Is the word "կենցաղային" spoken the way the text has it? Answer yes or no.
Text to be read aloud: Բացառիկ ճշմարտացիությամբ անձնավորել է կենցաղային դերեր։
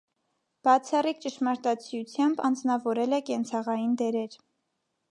yes